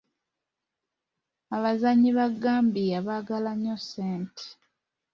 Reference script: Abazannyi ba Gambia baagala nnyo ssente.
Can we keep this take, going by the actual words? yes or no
yes